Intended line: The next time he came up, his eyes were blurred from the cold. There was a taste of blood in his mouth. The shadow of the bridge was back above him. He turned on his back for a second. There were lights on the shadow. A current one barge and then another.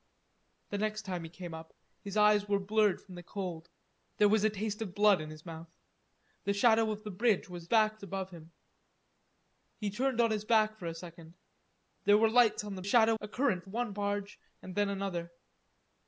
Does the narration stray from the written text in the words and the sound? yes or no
no